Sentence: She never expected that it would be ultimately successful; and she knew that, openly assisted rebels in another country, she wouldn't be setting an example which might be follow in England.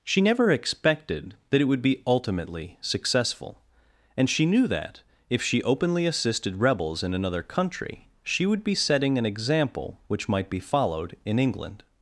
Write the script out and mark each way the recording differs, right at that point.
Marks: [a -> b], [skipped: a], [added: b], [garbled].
She never expected that it would be ultimately successful; and she knew that, [added: if she] openly assisted rebels in another country, she [wouldn't -> would] be setting an example which might be [follow -> followed] in England.